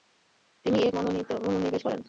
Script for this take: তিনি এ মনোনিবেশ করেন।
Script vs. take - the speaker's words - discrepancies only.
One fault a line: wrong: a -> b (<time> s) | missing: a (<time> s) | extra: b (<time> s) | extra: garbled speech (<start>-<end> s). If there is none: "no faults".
no faults